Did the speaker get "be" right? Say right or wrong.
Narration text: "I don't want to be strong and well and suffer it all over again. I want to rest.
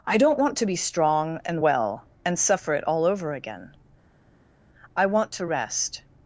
right